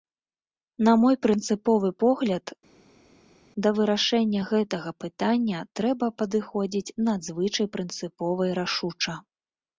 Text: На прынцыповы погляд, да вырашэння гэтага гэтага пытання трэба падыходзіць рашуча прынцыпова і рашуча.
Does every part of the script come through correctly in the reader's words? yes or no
no